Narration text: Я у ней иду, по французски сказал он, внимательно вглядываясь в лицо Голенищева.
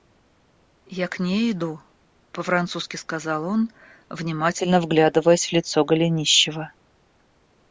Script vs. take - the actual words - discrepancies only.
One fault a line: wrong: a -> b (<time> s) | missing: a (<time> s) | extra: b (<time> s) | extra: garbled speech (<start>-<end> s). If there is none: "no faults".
wrong: у -> к (1.1 s)